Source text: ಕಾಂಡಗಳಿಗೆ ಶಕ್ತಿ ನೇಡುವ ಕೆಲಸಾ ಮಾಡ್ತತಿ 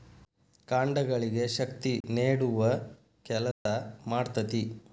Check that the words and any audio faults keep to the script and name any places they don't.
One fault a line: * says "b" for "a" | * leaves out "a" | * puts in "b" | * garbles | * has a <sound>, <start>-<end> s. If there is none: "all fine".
* has a dropout, 2.0-2.0 s
* has a dropout, 3.5-3.7 s